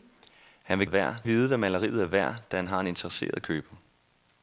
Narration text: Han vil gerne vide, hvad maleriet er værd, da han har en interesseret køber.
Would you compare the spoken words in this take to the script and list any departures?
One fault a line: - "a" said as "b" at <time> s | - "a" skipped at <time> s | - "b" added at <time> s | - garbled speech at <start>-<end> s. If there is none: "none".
- "gerne" said as "værd" at 0.9 s